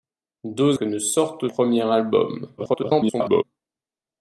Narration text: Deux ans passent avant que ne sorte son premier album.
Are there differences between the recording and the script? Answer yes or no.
yes